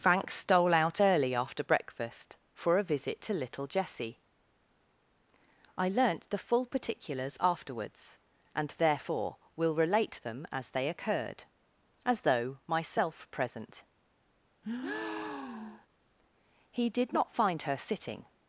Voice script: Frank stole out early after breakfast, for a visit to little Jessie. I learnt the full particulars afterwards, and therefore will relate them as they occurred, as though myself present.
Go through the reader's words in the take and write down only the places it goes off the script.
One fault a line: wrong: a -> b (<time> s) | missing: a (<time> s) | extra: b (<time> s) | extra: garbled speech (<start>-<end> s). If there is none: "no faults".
extra: He did not find her sitting (16.7 s)